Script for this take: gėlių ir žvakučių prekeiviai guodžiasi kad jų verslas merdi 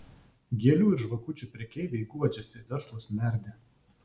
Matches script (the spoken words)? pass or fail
fail